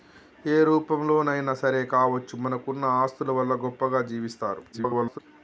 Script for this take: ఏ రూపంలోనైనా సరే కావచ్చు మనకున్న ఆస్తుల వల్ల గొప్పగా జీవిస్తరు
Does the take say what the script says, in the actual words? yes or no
no